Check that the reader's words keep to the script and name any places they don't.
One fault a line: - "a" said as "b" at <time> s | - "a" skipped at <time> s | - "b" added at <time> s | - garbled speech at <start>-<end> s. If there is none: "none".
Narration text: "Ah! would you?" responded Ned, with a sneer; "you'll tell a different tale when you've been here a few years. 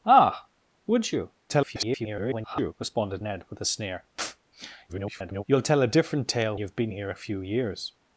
- garbled speech at 1.5-2.7 s
- garbled speech at 4.9-5.4 s
- "when" skipped at 6.6 s